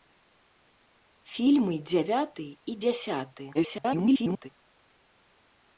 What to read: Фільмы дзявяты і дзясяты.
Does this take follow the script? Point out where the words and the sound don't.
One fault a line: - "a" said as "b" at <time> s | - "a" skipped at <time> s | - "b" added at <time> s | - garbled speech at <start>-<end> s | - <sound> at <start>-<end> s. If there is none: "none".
- garbled speech at 3.5-4.5 s